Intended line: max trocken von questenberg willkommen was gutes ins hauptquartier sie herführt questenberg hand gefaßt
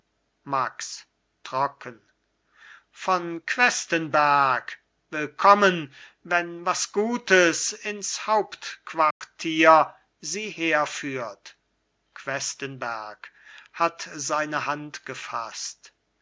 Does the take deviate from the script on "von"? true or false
false